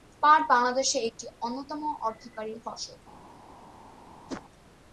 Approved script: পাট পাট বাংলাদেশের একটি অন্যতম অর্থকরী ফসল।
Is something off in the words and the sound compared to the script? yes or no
yes